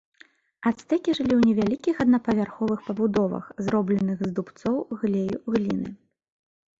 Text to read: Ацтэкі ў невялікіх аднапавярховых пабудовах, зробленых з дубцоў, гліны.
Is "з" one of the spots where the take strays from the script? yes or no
no